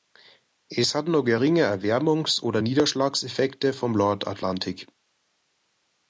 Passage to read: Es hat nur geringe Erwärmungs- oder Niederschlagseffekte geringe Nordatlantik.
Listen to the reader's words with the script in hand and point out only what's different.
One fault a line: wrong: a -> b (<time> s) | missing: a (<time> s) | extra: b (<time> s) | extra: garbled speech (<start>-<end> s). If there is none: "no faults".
wrong: geringe -> vom (3.7 s)